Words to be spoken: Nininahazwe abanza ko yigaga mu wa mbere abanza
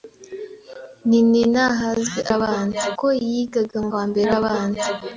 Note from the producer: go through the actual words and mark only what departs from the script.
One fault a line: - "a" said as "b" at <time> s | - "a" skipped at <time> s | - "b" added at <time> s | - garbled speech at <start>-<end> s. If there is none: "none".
none